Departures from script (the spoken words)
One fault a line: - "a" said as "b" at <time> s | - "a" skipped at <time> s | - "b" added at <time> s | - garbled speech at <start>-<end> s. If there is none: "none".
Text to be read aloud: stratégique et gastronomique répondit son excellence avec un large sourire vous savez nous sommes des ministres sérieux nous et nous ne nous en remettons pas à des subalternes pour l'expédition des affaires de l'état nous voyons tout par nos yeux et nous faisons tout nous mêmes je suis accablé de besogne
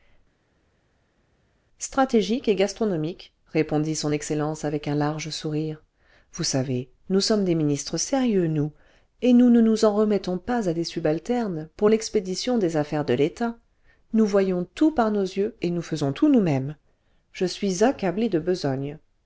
none